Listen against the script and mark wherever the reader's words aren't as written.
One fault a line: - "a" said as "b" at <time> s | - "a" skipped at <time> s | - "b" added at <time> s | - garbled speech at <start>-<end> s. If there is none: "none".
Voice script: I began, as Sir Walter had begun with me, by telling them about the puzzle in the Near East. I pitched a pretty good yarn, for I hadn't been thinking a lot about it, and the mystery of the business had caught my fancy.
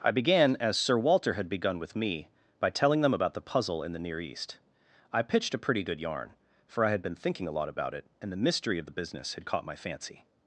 - "hadn't" said as "had" at 6.9 s